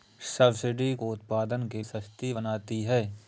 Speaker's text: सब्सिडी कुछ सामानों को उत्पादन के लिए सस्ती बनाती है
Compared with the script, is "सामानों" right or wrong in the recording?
wrong